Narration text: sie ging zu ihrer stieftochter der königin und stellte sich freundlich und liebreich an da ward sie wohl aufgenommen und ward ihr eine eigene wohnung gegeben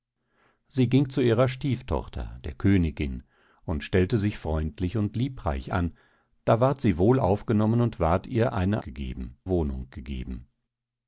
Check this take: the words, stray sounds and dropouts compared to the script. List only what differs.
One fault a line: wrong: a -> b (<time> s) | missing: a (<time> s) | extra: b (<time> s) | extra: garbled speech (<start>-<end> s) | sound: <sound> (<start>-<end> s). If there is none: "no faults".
wrong: eigene -> gegeben (8.8 s)